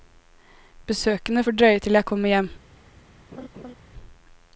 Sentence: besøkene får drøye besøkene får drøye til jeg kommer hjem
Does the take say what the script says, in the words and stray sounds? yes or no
no